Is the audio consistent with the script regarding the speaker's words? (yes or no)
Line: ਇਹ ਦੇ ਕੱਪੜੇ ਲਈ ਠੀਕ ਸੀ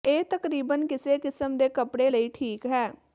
no